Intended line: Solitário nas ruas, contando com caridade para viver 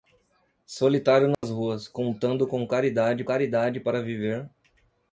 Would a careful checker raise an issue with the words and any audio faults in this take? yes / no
yes